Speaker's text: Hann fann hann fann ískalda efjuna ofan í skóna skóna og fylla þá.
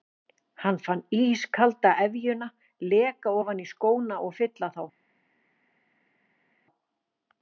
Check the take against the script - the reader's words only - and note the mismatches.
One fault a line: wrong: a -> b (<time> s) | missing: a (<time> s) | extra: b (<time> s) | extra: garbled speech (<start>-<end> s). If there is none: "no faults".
missing: hann fann (1.0 s)
extra: leka (3.0 s)
missing: skóna (4.2 s)